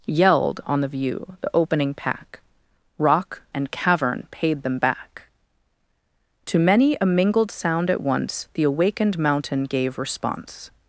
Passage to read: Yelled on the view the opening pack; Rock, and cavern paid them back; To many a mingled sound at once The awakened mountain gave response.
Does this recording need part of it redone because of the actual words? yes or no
no